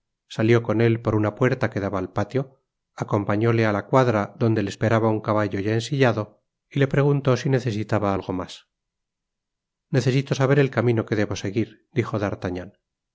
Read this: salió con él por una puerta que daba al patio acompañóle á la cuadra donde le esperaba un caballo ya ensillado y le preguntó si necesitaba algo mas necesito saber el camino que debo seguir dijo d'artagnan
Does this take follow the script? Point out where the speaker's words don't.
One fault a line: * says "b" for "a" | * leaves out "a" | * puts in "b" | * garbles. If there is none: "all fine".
all fine